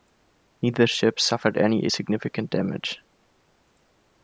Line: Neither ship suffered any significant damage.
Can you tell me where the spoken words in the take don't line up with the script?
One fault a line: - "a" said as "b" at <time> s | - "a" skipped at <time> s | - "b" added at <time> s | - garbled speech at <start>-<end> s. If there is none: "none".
none